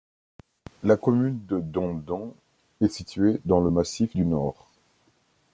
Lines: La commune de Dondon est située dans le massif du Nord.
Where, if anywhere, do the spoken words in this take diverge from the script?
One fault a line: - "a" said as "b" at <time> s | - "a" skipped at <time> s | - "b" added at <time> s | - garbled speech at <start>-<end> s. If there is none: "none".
none